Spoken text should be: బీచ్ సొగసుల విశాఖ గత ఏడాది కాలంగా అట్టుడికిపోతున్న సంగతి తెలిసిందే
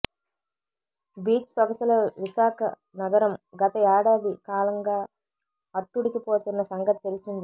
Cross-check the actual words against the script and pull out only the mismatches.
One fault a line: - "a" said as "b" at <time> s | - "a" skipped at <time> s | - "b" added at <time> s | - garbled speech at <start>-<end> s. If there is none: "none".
- "నగరం" added at 3.0 s